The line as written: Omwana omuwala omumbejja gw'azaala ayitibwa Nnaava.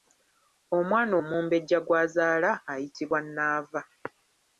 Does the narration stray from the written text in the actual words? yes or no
yes